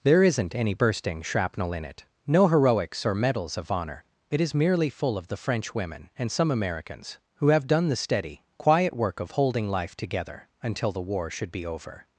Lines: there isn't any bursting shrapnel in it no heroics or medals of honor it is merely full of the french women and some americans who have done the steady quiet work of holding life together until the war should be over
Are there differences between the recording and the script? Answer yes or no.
no